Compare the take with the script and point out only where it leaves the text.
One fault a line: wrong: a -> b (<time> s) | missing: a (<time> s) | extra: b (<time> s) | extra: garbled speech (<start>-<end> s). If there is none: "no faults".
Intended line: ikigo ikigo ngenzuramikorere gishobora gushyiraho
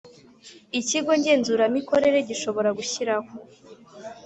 missing: ikigo (1.1 s)